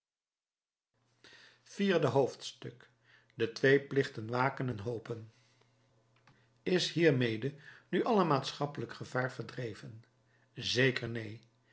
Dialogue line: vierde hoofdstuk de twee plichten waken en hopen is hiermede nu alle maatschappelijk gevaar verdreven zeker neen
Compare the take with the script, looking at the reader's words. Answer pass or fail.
pass